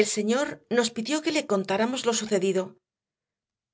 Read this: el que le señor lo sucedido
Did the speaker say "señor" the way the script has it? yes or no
no